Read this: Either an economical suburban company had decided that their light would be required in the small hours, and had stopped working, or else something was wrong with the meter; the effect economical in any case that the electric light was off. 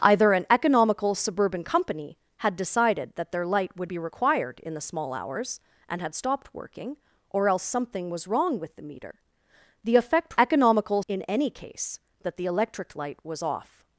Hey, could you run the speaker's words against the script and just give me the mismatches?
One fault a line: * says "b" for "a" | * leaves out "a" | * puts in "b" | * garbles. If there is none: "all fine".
all fine